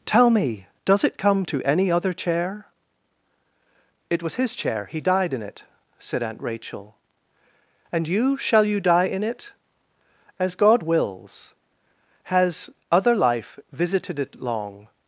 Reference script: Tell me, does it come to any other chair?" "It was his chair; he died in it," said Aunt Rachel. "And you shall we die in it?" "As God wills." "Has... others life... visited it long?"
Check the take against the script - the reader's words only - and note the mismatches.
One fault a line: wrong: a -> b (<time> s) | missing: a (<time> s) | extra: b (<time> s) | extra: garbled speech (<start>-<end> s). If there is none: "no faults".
wrong: we -> you (8.6 s)
wrong: others -> other (12.9 s)